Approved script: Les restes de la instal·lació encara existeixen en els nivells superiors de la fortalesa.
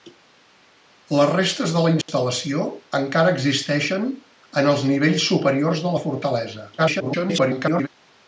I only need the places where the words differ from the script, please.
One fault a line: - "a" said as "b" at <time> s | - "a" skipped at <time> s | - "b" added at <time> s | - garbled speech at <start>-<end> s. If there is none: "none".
- garbled speech at 6.8-7.9 s